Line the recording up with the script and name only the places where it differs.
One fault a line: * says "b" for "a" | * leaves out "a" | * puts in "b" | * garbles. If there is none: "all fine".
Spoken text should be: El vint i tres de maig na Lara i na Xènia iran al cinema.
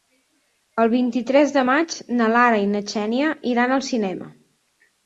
all fine